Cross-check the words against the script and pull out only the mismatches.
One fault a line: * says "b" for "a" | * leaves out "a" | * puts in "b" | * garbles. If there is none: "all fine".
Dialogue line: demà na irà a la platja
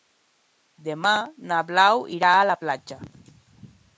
* puts in "blau"